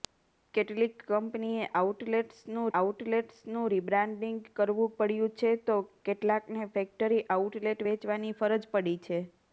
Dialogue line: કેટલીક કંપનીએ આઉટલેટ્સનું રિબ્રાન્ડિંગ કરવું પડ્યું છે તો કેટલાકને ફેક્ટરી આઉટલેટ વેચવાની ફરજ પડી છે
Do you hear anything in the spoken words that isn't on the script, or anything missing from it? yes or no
yes